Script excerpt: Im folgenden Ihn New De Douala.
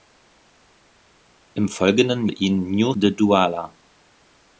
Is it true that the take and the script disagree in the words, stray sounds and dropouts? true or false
false